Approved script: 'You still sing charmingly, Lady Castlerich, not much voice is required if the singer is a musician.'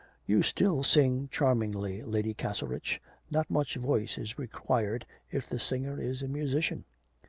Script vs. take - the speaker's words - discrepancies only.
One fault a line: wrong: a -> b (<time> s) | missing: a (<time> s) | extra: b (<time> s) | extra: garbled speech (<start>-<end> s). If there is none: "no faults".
no faults